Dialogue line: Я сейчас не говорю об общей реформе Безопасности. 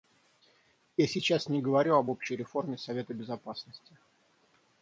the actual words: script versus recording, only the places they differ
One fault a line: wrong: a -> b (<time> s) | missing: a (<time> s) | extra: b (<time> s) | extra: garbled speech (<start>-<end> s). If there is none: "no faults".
extra: Совета (2.8 s)